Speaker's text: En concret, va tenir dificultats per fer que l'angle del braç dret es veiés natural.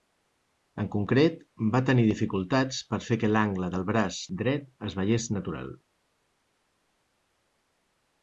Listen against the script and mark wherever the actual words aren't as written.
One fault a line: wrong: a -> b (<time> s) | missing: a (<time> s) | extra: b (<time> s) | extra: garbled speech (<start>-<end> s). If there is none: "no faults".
no faults